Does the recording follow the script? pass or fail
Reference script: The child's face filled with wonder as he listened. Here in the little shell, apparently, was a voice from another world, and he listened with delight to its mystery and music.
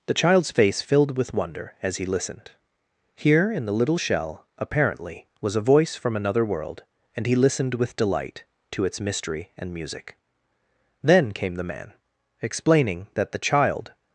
fail